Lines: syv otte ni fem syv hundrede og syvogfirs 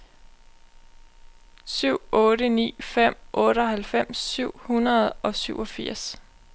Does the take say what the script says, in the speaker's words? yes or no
no